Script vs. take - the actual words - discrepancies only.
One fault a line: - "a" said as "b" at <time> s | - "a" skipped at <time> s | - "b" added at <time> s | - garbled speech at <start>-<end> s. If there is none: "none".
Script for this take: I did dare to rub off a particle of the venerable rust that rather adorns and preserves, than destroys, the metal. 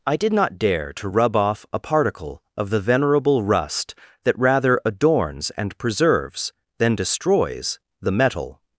- "not" added at 0.3 s